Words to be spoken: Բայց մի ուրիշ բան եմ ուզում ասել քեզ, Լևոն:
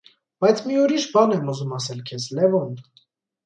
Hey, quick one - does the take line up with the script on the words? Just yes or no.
yes